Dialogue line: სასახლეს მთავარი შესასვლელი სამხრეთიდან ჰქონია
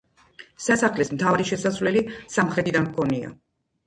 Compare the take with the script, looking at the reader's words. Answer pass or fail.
pass